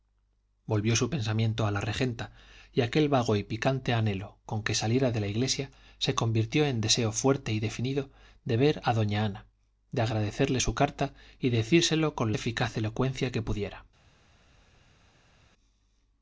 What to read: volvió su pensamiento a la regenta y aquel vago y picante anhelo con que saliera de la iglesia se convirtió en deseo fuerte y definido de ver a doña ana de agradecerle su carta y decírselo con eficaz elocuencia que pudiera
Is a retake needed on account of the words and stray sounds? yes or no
no